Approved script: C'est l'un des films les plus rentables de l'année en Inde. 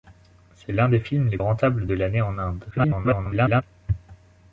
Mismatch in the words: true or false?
true